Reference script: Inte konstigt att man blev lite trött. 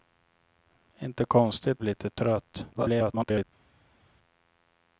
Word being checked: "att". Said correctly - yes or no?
no